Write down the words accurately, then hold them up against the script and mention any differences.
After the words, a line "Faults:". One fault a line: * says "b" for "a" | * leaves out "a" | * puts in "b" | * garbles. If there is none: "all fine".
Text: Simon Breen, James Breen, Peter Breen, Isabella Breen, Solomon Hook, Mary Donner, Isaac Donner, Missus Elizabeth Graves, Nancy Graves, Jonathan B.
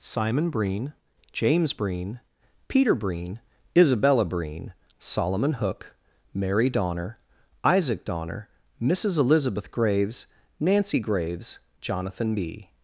Simon Breen, James Breen, Peter Breen, Isabella Breen, Solomon Hook, Mary Donner, Isaac Donner, Missus Elizabeth Graves, Nancy Graves, Jonathan B.
Faults:
all fine